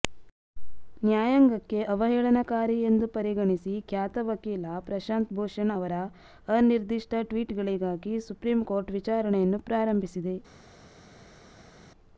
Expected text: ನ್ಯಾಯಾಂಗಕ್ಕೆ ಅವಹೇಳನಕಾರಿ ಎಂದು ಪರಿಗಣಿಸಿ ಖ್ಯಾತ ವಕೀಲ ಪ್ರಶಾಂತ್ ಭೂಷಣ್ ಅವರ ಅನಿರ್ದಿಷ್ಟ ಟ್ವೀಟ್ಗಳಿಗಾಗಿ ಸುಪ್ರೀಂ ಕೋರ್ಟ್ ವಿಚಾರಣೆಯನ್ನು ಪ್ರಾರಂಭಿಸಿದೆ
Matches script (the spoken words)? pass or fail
pass